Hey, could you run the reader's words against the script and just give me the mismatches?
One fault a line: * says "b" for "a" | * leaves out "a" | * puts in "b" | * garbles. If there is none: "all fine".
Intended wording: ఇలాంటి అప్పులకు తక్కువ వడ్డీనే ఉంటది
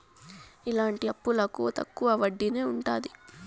all fine